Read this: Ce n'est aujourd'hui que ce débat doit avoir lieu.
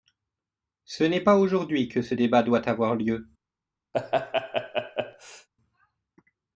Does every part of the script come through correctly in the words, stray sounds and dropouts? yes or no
no